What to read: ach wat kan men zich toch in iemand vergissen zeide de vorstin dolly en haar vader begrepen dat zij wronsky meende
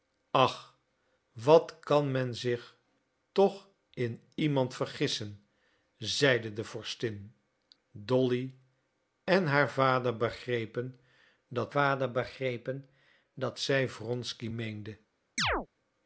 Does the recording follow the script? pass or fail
fail